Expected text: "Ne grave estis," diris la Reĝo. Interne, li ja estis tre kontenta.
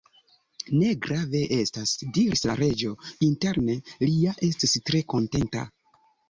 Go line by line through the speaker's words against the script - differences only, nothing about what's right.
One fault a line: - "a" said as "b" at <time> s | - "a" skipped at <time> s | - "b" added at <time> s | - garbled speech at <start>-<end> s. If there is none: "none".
- "estis" said as "estas" at 1.6 s